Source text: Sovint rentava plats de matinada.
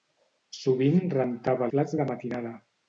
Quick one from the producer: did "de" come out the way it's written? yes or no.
yes